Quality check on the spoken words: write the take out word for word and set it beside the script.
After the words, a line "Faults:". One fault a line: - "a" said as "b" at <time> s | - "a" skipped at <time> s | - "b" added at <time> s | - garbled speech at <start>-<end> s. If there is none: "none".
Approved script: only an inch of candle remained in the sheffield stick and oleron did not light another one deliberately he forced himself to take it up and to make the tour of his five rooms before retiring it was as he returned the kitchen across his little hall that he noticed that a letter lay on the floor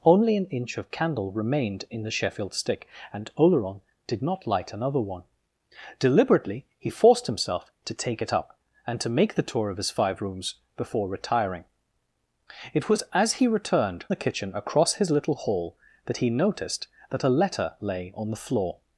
only an inch of candle remained in the sheffield stick and oleron did not light another one deliberately he forced himself to take it up and to make the tour of his five rooms before retiring it was as he returned the kitchen across his little hall that he noticed that a letter lay on the floor
Faults:
none